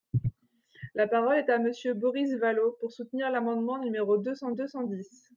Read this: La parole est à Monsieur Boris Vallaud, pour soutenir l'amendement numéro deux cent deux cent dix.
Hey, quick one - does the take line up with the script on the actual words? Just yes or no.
yes